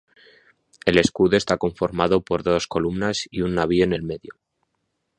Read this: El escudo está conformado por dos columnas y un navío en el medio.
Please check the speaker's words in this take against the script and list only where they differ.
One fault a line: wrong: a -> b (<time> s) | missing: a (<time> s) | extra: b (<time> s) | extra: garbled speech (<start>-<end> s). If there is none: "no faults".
no faults